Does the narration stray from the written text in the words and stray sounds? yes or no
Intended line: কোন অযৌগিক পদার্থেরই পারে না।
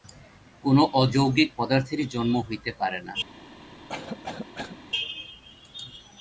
yes